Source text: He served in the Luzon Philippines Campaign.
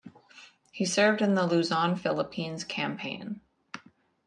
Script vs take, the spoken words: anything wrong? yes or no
no